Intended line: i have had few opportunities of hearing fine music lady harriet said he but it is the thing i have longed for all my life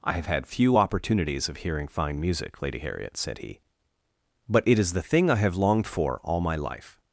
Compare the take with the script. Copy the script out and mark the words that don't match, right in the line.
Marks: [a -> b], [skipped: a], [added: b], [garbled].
i have had few opportunities of hearing fine music lady harriet said he but it is the thing i have longed for all my life